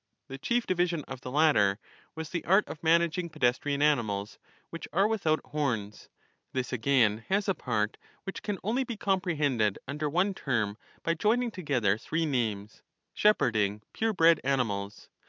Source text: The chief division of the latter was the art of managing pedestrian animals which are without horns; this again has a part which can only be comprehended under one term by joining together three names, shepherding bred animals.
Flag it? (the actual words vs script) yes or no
yes